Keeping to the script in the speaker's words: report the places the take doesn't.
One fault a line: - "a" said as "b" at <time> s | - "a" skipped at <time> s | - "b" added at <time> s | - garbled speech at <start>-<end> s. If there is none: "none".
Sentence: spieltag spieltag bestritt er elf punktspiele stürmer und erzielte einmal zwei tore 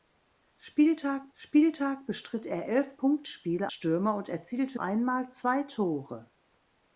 none